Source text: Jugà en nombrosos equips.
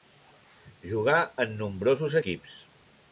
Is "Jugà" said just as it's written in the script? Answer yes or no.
yes